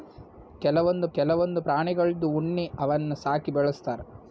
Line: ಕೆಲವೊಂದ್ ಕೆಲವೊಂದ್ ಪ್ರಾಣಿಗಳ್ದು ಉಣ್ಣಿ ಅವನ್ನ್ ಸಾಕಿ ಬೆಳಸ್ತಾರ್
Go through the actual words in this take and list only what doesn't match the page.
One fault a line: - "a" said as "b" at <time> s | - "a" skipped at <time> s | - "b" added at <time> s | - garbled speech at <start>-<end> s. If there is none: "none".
none